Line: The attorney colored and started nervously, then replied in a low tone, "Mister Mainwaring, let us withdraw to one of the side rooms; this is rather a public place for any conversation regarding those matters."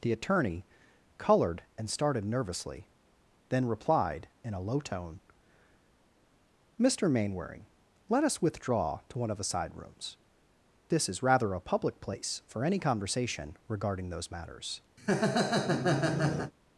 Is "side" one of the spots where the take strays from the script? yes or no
no